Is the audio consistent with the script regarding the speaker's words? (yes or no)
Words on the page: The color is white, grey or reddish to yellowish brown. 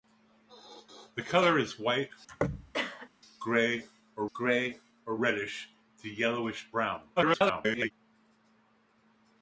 no